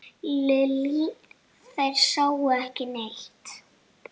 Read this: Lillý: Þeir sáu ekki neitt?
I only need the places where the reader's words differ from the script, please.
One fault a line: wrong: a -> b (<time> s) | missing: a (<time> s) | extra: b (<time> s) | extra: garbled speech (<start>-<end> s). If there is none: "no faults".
no faults